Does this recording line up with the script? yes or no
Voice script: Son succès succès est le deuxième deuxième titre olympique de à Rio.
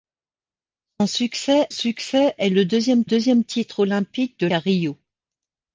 yes